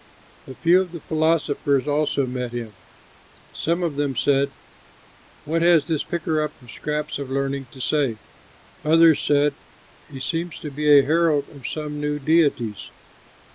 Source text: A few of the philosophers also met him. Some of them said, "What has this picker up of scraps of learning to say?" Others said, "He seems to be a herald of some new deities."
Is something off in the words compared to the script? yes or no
no